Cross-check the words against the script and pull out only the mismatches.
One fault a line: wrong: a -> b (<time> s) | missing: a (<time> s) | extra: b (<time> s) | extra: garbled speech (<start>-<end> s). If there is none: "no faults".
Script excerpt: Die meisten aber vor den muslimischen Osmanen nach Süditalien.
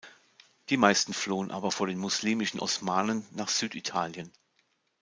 extra: flohen (1.1 s)